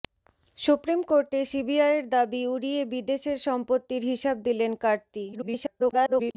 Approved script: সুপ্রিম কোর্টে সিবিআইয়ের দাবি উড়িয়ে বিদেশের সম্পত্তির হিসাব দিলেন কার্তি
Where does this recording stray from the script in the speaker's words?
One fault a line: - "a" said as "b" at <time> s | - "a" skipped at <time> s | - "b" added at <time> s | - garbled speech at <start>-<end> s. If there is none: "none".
- garbled speech at 5.3-6.4 s